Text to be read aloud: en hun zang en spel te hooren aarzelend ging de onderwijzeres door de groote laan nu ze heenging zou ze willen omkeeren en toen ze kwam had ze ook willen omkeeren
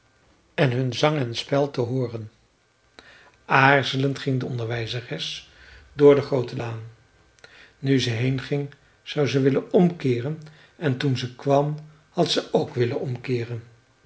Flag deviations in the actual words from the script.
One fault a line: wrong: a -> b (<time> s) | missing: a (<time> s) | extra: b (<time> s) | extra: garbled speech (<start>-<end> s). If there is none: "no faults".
no faults